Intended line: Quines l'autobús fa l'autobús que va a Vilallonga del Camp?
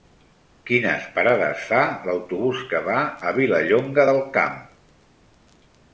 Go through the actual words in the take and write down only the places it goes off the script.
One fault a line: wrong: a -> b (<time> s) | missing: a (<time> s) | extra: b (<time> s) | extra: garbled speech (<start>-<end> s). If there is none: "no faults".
wrong: l'autobús -> parades (1.2 s)